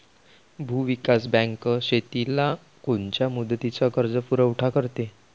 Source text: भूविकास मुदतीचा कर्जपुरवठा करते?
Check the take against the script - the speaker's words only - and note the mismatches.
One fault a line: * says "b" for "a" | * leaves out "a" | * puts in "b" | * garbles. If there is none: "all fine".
* puts in "बँक शेतीला कोनच्या"